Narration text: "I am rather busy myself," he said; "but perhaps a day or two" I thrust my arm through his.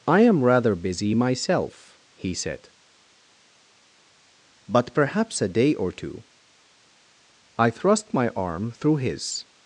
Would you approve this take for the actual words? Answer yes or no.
yes